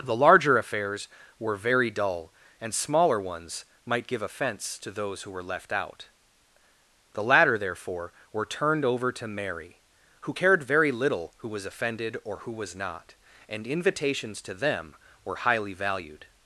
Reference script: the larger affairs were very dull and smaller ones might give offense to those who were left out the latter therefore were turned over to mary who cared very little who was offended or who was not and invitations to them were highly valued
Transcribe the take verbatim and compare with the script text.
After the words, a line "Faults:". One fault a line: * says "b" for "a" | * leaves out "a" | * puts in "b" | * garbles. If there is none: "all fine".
the larger affairs were very dull and smaller ones might give offense to those who were left out the latter therefore were turned over to mary who cared very little who was offended or who was not and invitations to them were highly valued
Faults:
all fine